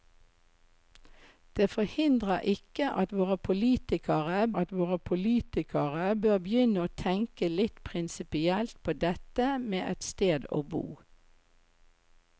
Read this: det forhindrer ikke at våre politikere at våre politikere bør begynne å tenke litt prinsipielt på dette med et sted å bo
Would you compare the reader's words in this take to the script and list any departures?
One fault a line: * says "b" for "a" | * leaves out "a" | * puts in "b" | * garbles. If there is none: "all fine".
all fine